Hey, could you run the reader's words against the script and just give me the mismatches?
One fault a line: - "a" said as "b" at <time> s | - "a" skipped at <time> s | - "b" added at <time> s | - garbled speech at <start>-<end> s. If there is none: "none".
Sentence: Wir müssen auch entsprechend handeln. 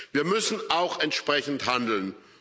none